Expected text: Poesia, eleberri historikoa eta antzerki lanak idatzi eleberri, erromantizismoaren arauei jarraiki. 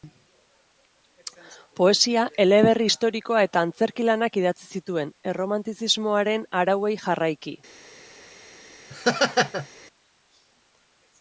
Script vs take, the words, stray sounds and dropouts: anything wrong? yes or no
yes